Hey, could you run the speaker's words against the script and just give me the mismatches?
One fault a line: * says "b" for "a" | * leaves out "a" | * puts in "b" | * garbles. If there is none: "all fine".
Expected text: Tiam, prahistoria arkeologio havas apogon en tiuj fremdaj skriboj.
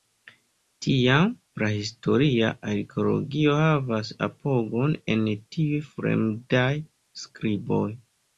all fine